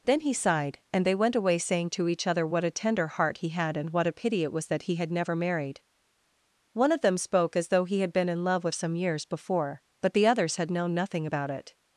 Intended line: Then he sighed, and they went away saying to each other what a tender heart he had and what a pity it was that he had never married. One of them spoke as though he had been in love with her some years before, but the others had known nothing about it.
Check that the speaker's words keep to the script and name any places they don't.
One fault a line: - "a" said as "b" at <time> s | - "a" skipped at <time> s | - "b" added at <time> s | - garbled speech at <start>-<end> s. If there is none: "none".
- "her" skipped at 8.8 s